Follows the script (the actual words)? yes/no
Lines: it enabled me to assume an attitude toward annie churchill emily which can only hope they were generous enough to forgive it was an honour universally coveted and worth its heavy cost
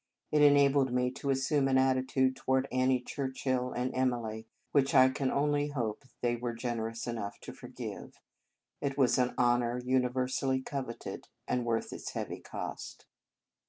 no